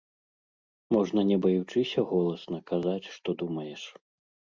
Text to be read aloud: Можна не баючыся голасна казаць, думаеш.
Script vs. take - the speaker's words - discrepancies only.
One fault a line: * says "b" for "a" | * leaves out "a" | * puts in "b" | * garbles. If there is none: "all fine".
* puts in "што"